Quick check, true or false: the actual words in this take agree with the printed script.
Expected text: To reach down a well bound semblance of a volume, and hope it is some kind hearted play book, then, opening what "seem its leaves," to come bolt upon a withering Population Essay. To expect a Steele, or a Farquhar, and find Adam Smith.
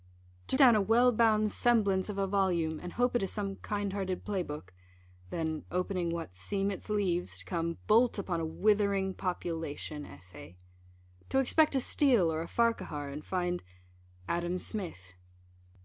false